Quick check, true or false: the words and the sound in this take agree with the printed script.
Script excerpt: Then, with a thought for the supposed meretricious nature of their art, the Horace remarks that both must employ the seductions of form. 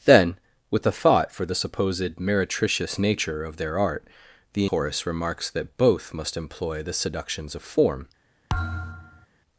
false